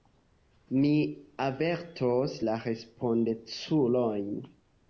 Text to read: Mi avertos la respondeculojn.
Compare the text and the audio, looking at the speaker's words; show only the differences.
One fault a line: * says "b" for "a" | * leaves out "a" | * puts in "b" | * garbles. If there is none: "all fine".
all fine